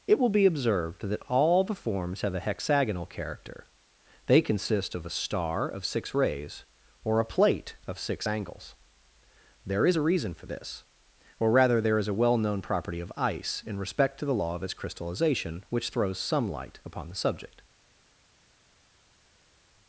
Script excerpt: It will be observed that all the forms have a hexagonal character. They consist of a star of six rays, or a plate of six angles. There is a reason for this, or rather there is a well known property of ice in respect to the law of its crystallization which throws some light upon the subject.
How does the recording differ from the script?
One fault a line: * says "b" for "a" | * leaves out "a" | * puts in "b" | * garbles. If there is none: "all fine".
all fine